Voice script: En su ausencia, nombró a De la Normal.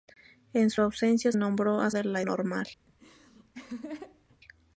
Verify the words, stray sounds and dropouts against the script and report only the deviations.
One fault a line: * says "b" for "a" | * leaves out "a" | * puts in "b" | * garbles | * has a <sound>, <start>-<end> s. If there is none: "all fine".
* has a laugh, 2.9-4.4 s